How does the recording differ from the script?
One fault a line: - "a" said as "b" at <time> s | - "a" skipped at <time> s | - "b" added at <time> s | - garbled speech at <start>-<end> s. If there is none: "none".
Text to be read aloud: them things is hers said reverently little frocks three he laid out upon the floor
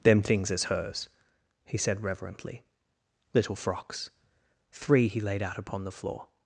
- "he" added at 1.6 s